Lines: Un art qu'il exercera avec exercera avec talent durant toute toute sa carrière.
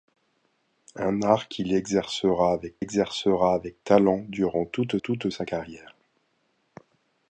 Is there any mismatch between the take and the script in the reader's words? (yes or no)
no